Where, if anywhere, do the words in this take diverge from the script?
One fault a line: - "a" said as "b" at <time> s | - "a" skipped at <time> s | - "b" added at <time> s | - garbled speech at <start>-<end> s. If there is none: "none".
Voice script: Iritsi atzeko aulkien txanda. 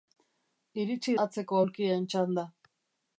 none